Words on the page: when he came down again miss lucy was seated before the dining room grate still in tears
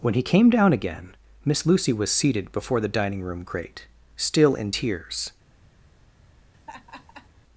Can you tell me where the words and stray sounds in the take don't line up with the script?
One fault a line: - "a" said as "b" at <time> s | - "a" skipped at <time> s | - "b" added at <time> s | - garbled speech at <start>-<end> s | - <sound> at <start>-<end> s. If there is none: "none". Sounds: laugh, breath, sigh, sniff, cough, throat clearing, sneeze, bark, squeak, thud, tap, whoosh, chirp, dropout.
- laugh at 6.5-7.3 s